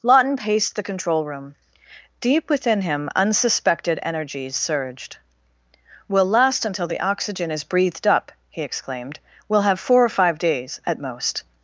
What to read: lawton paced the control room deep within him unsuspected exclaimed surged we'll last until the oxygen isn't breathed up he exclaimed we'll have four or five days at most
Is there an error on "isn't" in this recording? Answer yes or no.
yes